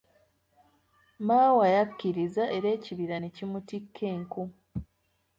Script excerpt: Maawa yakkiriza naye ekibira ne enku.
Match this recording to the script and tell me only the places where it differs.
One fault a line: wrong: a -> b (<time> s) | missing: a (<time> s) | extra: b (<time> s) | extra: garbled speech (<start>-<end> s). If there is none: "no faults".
wrong: naye -> era (2.5 s)
extra: kimutikka (3.3 s)